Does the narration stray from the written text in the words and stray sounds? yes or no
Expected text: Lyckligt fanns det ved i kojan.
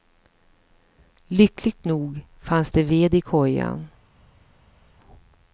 yes